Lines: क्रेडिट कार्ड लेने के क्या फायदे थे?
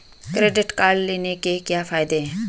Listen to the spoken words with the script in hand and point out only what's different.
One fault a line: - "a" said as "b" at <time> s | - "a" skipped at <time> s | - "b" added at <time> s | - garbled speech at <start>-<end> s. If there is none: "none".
- "थे" said as "हैं" at 2.2 s